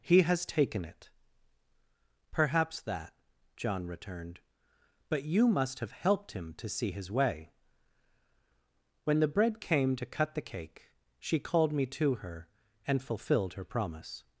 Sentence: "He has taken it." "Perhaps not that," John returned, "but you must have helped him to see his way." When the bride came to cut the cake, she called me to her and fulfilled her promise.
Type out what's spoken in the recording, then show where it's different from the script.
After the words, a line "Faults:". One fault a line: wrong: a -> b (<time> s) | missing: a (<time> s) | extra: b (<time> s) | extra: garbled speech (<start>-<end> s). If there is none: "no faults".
"He has taken it." "Perhaps that," John returned, "but you must have helped him to see his way." When the bread came to cut the cake, she called me to her and fulfilled her promise.
Faults:
missing: not (2.8 s)
wrong: bride -> bread (9.3 s)